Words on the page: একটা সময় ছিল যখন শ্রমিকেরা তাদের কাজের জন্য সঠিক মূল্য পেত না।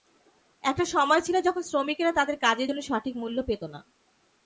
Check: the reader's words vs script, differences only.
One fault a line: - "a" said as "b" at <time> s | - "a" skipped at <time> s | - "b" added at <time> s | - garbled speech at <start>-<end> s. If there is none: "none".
none